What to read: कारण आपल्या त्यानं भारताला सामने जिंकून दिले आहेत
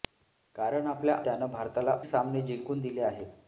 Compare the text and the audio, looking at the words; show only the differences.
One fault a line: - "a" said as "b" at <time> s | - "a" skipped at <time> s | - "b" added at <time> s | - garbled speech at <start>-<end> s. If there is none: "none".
none